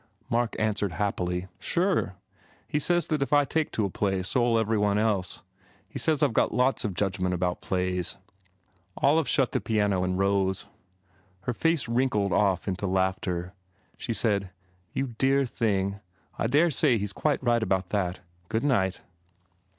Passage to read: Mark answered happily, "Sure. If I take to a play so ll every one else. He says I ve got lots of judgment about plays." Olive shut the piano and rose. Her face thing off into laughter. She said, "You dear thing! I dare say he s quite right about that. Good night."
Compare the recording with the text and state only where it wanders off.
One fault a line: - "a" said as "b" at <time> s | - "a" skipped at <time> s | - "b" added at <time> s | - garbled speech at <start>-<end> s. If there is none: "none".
- "He says that" added at 2.7 s
- "thing" said as "wrinkled" at 11.9 s